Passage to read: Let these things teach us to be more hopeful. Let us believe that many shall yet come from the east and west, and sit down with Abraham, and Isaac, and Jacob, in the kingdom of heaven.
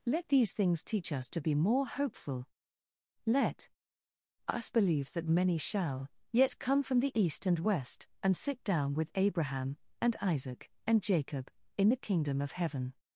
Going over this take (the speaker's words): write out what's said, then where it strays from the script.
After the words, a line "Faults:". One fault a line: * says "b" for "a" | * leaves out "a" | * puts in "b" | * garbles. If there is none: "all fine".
Let these things teach us to be more hopeful. Let us believes that many shall yet come from the east and west, and sit down with Abraham, and Isaac, and Jacob, in the kingdom of heaven.
Faults:
* says "believes" for "believe"